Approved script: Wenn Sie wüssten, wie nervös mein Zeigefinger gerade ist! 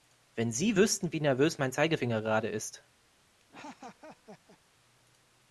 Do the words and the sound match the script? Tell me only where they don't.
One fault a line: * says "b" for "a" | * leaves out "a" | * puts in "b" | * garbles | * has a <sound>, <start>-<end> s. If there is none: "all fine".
* has a laugh, 3.4-4.6 s